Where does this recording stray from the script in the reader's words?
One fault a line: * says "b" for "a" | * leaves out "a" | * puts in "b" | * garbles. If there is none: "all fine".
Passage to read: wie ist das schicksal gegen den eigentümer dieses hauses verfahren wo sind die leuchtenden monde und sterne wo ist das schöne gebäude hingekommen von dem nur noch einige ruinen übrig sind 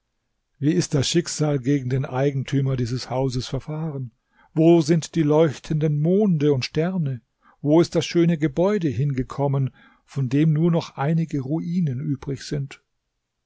all fine